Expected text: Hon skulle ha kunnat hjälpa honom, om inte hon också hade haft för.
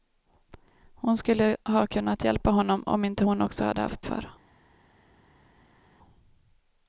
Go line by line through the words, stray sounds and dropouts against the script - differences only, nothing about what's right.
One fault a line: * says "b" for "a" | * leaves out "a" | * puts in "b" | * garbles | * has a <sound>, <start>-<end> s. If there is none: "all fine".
all fine